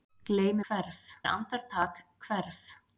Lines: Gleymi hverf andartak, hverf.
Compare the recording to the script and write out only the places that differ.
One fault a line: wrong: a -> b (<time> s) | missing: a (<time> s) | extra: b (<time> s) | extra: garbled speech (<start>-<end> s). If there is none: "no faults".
no faults